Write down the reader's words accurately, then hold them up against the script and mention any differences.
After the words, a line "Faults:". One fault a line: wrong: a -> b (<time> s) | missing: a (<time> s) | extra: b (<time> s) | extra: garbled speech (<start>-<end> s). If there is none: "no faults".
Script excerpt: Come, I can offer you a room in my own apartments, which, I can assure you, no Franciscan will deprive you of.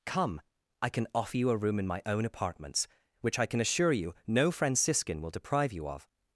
Come, I can offer you a room in my own apartments, which, I can assure you, no Franciscan will deprive you of.
Faults:
no faults